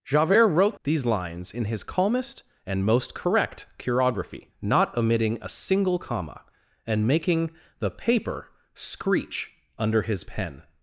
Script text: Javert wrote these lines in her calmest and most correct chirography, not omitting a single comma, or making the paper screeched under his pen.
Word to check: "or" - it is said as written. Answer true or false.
false